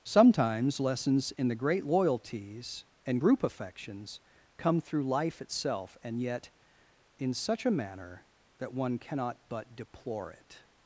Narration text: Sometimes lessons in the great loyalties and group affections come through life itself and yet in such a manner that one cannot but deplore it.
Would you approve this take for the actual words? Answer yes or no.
yes